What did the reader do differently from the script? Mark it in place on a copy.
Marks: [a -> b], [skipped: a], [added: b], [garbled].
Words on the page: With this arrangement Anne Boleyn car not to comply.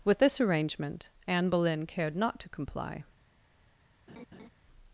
With this arrangement Anne Boleyn [car -> cared] not to comply.